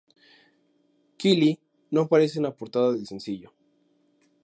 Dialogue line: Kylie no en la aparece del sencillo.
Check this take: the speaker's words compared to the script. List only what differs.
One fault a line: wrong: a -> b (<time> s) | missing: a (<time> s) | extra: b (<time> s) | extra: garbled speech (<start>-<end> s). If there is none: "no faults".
extra: aparece (2.0 s)
wrong: aparece -> portada (2.5 s)